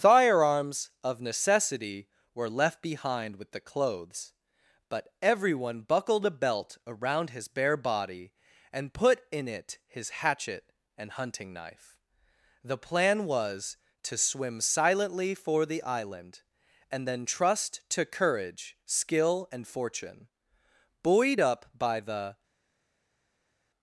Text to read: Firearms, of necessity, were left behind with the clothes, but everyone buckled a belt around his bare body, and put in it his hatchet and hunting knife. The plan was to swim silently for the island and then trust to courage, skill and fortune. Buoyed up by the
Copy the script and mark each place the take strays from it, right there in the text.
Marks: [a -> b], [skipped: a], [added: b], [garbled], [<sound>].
Firearms, of necessity, were left behind with the clothes, but everyone buckled a belt around his bare body, and put in it his hatchet and hunting knife. The plan was to swim silently for the island and then trust to courage, skill and fortune. Buoyed up by the